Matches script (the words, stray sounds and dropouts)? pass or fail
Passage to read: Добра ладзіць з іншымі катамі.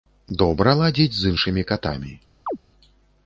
fail